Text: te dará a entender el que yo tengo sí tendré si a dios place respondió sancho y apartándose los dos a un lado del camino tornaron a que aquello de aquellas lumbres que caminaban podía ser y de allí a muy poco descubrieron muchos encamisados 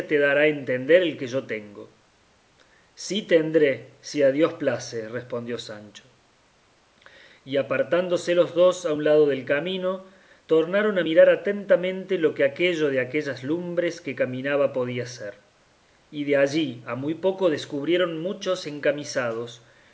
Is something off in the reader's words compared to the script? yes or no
yes